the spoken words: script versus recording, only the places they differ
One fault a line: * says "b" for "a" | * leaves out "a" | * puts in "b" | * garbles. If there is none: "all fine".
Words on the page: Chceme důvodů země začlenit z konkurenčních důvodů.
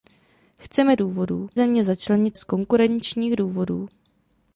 all fine